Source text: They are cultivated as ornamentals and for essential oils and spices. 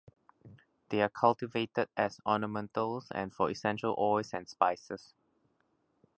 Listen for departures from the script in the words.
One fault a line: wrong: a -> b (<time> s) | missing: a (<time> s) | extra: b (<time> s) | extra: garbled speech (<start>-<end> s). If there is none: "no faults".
no faults